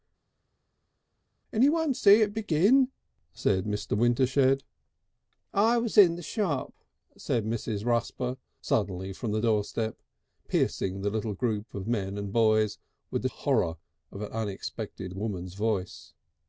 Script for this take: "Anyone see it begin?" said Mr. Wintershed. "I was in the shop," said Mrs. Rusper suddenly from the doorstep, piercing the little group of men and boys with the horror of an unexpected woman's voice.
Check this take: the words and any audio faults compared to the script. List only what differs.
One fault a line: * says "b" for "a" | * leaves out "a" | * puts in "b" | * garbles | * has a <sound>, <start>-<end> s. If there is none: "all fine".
all fine